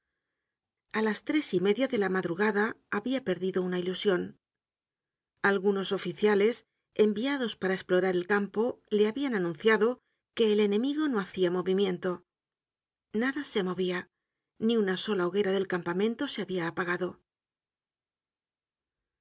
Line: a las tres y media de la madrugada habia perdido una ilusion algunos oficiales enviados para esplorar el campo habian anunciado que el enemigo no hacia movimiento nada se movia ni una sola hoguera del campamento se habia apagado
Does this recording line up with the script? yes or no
no